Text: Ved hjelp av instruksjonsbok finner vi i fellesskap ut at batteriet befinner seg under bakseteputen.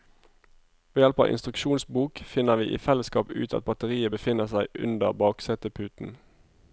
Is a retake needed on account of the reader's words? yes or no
no